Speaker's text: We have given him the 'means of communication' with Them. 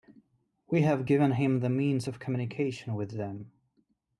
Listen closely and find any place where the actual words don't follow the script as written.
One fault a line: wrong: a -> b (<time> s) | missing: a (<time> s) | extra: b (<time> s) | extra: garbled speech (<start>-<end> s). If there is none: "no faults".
no faults